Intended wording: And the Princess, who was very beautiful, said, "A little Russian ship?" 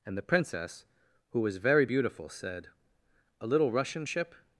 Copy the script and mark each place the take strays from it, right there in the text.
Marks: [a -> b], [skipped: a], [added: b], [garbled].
And the Princess, who was very beautiful, said, "A little Russian ship?"